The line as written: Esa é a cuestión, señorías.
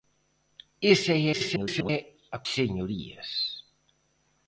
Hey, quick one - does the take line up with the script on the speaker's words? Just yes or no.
no